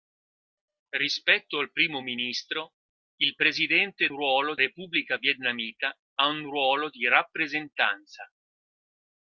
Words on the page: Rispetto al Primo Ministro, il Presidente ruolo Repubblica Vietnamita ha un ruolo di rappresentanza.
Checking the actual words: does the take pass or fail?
pass